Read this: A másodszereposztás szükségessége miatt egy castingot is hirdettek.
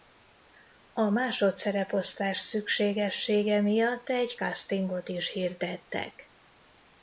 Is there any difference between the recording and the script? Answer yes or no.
no